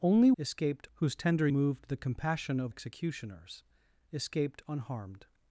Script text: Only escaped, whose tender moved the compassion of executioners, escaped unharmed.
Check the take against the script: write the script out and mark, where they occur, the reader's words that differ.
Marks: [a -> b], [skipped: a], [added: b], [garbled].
Only escaped, whose tender moved the compassion of executioners, escaped unharmed.